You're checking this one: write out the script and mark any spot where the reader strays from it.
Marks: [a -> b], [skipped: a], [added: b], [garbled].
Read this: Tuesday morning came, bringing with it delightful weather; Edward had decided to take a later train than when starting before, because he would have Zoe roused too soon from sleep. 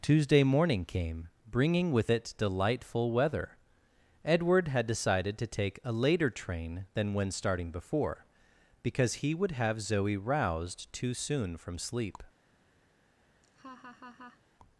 Tuesday morning came, bringing with it delightful weather; Edward had decided to take a later train than when starting before, because he would have Zoe roused too soon from sleep.